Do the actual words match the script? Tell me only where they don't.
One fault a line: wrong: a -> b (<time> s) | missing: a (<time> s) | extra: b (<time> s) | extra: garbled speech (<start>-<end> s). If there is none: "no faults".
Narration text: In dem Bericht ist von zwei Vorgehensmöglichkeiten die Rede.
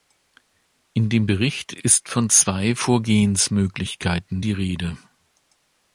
no faults